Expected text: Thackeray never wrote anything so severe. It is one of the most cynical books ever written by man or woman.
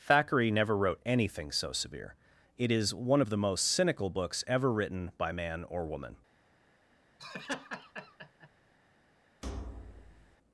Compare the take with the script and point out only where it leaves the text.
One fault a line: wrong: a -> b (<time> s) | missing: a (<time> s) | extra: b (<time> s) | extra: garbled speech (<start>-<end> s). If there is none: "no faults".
no faults